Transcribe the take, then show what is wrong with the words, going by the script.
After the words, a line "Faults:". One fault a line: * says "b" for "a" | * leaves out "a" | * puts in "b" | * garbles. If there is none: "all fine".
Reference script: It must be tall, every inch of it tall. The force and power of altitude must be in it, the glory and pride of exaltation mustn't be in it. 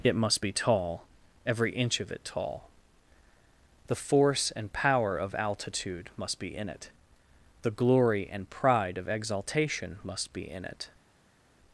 It must be tall, every inch of it tall. The force and power of altitude must be in it, the glory and pride of exaltation must be in it.
Faults:
* says "must" for "mustn't"